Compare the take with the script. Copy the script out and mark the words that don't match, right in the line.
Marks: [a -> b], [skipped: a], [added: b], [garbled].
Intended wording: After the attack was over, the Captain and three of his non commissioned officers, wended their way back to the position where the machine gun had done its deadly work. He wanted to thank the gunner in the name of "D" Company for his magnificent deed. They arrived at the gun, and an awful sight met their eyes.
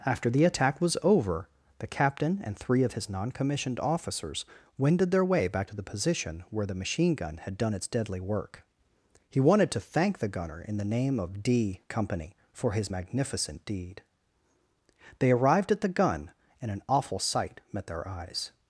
After the attack was over, the Captain and three of his non commissioned officers, wended their way back to the position where the machine gun had done its deadly work. He wanted to thank the gunner in the name of "D" Company for his magnificent deed. They arrived at the gun, and an awful sight met their eyes.